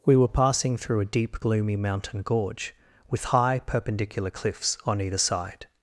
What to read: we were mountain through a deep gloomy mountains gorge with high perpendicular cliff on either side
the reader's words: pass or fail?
fail